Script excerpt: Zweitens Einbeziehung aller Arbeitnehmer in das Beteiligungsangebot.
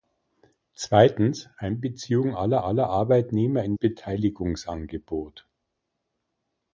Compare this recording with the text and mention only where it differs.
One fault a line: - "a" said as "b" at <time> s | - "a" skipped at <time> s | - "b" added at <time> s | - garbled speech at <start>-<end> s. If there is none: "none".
- "aller" added at 2.6 s
- "das" skipped at 3.8 s